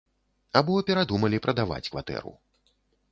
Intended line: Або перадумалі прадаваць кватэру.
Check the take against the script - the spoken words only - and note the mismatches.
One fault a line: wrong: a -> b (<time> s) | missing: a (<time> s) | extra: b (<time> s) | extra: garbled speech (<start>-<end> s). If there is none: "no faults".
no faults